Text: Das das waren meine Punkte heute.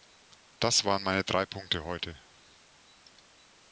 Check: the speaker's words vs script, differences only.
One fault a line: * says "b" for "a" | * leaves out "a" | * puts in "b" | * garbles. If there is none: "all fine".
* leaves out "das"
* puts in "drei"